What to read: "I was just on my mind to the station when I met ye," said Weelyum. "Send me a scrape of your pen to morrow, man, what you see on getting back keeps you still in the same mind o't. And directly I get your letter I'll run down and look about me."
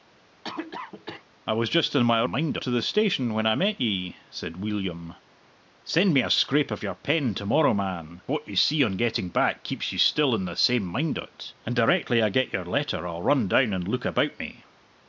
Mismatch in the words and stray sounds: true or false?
true